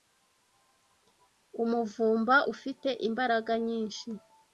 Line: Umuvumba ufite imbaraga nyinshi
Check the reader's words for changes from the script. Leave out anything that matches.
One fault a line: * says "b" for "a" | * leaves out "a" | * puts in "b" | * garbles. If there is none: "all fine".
all fine